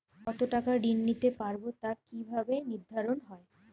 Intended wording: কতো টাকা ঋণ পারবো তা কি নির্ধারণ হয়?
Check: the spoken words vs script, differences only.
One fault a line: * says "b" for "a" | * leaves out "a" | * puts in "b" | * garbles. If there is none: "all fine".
* puts in "নিতে"
* puts in "ভাবে"